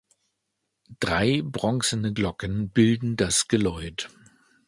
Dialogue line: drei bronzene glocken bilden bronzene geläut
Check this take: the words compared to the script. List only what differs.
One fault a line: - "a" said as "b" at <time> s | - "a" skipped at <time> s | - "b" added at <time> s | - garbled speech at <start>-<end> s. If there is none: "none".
- "bronzene" said as "das" at 3.2 s